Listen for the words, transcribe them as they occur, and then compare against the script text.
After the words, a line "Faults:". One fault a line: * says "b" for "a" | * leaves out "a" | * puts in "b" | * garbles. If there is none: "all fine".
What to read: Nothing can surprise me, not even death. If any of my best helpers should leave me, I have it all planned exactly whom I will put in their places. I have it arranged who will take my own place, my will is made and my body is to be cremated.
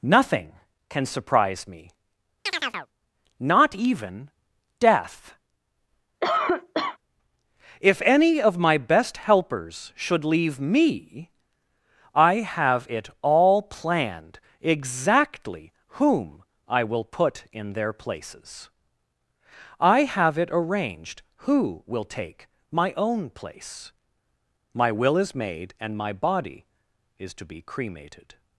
Nothing can surprise me, not even death. If any of my best helpers should leave me, I have it all planned exactly whom I will put in their places. I have it arranged who will take my own place, my will is made and my body is to be cremated.
Faults:
all fine